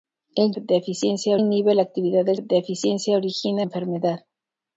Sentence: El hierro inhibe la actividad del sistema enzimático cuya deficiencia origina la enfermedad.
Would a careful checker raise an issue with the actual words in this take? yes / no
yes